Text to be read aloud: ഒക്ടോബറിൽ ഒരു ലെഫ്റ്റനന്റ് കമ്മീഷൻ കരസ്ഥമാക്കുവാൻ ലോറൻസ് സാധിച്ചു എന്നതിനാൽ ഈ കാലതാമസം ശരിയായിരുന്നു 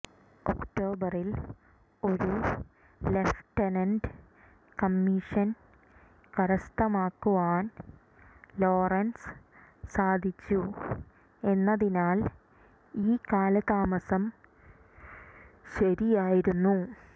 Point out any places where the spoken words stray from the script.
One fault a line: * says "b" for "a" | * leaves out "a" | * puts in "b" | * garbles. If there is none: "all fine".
all fine